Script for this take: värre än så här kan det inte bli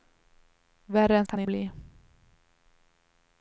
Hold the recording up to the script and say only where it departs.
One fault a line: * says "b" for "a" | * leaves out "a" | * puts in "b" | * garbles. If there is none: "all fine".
* leaves out "så här"
* leaves out "inte"